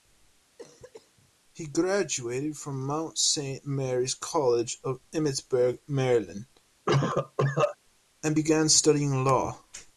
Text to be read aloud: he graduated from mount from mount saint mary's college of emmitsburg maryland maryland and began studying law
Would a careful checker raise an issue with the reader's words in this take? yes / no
yes